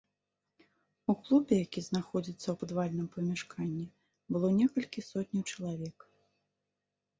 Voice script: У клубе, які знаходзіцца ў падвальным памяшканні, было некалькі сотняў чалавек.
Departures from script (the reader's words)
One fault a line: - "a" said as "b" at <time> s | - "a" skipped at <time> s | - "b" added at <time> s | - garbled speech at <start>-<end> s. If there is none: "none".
none